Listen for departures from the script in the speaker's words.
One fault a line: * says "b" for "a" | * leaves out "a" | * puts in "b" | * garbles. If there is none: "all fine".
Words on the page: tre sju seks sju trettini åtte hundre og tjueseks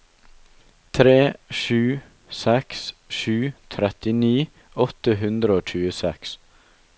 all fine